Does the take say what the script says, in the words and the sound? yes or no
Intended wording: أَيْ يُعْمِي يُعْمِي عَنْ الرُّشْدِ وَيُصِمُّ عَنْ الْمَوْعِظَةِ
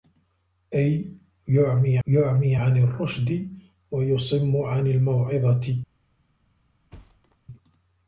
no